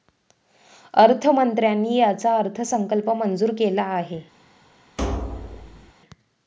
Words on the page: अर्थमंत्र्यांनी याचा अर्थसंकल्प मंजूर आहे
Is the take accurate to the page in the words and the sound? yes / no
no